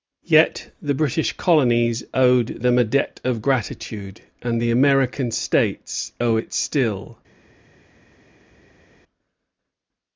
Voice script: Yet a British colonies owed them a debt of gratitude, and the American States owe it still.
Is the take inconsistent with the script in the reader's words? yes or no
yes